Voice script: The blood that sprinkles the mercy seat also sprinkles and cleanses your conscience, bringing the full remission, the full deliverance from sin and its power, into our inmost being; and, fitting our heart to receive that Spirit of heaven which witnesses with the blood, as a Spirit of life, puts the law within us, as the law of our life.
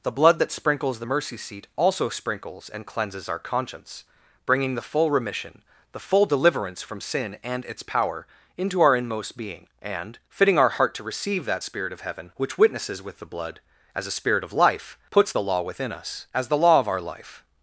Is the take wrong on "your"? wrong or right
wrong